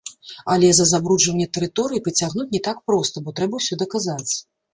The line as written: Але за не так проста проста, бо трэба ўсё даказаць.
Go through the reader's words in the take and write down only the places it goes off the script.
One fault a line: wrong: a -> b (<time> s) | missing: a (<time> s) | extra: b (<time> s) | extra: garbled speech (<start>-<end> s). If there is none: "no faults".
extra: забруджванне тэрыторыі прыцягнуць (0.9 s)
missing: проста (3.2 s)